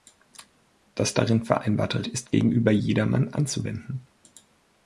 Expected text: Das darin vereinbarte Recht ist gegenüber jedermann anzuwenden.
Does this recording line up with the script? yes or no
no